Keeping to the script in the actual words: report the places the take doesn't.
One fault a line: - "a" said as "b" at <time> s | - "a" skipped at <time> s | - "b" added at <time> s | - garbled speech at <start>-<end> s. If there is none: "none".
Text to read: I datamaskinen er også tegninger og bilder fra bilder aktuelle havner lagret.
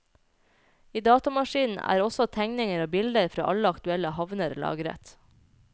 - "bilder" said as "alle" at 3.5 s